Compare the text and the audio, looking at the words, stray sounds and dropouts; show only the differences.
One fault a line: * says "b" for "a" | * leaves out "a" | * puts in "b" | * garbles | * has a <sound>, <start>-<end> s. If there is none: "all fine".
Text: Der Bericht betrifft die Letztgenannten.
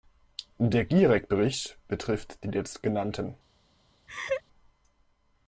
* puts in "Gierek"
* has a laugh, 4.1-4.4 s